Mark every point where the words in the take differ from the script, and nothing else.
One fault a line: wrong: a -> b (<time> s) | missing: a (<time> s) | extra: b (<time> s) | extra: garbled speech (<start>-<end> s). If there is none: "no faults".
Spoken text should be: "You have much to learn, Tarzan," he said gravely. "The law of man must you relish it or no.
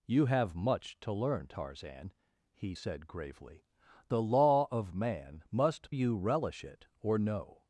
no faults